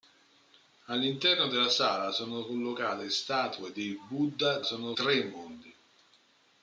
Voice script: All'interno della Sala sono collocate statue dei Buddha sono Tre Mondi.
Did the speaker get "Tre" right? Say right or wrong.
right